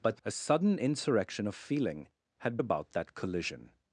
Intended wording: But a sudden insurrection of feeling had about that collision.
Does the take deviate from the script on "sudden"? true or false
false